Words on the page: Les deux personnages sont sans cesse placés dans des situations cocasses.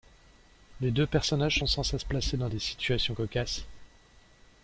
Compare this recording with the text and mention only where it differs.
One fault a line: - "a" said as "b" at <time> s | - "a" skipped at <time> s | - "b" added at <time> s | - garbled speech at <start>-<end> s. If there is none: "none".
none